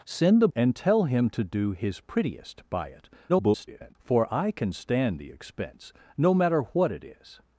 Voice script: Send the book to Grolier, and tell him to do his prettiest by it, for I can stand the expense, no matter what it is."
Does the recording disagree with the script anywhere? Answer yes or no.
yes